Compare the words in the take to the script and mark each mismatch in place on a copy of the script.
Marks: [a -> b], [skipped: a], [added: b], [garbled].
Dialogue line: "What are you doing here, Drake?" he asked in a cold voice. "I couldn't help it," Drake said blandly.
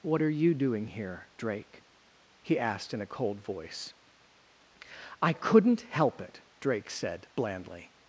"What are you doing here, Drake?" he asked in a cold voice. "I couldn't help it," Drake said blandly.